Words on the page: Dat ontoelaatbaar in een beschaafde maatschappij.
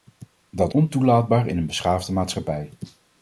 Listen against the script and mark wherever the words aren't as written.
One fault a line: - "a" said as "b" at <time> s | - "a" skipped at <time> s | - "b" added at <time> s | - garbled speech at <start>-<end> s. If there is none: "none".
none